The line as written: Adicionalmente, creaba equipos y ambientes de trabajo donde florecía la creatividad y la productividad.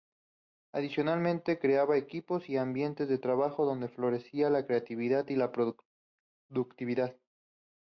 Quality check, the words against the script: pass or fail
pass